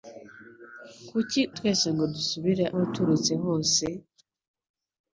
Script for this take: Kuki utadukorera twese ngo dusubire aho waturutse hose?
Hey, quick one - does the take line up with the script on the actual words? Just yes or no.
no